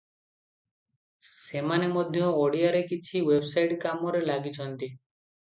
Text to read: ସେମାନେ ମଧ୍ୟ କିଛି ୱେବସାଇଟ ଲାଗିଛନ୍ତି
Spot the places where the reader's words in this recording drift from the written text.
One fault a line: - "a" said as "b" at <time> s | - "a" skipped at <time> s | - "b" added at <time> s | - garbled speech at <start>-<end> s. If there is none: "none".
- "ଓଡ଼ିଆରେ" added at 2.3 s
- "କାମରେ" added at 3.8 s